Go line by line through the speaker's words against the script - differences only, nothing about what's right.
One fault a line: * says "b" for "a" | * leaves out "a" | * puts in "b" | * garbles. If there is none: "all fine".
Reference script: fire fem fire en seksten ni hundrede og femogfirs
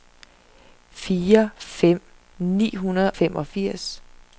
* leaves out "fire en seksten"
* leaves out "og"